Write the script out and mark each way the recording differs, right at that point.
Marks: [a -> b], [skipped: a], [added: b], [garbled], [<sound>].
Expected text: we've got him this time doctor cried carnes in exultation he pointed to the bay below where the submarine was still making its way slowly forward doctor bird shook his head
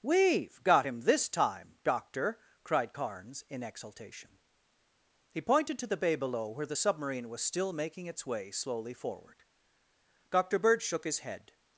we've got him this time doctor cried carnes in exultation he pointed to the bay below where the submarine was still making its way slowly forward doctor bird shook his head